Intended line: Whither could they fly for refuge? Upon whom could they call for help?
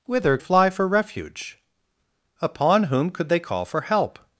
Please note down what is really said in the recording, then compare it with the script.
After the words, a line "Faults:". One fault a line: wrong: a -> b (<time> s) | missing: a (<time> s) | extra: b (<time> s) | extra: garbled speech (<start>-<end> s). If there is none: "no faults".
Whither fly for refuge? Upon whom could they call for help?
Faults:
missing: could they (0.4 s)